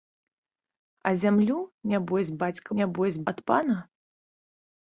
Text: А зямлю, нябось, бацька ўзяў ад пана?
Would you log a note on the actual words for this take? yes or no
yes